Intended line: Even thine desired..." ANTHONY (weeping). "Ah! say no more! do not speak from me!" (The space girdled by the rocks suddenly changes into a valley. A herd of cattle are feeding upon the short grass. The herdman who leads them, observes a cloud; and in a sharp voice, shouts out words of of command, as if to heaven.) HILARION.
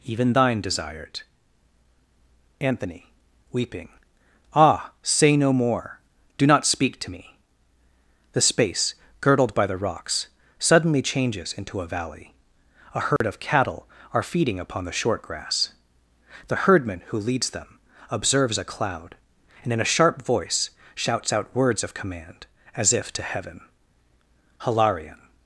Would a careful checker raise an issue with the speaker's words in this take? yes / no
yes